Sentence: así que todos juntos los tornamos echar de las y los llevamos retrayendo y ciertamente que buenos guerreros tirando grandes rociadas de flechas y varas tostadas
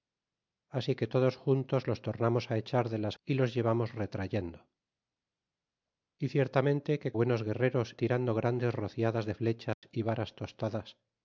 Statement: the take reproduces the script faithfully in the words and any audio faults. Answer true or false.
false